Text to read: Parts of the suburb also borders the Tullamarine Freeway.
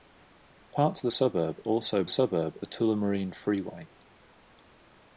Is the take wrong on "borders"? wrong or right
wrong